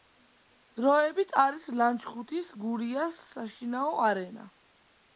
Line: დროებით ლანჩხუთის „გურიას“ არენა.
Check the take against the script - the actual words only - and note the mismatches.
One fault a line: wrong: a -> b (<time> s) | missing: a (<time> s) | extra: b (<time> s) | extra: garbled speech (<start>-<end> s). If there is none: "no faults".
extra: არის (1.4 s)
extra: საშინაო (3.3 s)